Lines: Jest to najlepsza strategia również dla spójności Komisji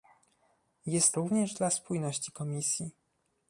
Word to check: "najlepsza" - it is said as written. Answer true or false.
false